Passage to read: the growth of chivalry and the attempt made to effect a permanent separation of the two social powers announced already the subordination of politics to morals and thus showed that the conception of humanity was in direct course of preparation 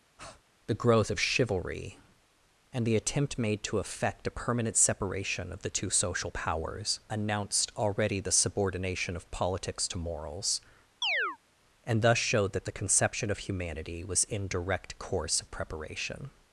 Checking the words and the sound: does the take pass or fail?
fail